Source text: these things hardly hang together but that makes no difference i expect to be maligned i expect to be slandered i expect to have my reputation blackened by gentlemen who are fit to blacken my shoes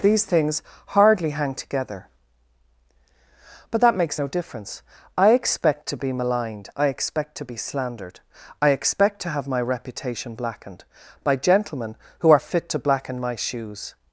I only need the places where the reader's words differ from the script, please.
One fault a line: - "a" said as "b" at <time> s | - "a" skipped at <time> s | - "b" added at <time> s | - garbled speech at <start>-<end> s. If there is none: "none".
none